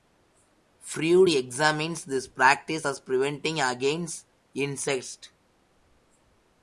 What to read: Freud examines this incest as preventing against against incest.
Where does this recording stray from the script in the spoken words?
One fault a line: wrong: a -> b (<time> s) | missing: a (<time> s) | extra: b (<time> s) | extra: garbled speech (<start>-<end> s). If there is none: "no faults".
wrong: incest -> practice (2.3 s)
missing: against (4.3 s)